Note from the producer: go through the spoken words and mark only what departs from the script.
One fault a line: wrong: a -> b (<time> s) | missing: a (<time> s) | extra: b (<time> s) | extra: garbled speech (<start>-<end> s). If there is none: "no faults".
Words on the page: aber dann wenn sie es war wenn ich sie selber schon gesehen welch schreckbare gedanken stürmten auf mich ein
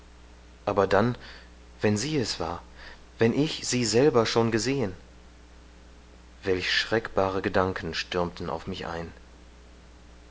no faults